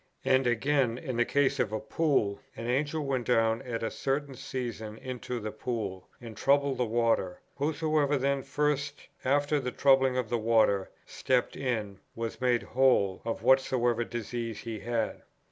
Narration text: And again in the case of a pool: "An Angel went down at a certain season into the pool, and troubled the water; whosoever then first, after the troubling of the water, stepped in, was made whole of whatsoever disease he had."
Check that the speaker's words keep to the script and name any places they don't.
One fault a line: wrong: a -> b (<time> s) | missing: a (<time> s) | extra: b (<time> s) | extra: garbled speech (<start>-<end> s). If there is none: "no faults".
no faults